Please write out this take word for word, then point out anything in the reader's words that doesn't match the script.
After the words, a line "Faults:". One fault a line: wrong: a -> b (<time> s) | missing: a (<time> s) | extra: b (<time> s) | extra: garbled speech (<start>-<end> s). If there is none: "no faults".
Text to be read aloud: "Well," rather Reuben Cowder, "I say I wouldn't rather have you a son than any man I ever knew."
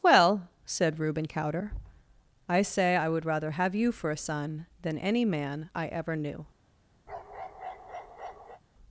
"Well," said Reuben Cowder, "I say I would rather have you for a son than any man I ever knew."
Faults:
wrong: rather -> said (0.7 s)
wrong: wouldn't -> would (3.1 s)
extra: for (3.9 s)